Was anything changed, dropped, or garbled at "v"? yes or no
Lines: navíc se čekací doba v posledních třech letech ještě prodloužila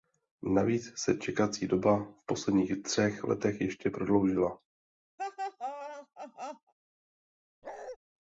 no